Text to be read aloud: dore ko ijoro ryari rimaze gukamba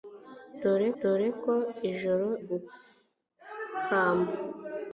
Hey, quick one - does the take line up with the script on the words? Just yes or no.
no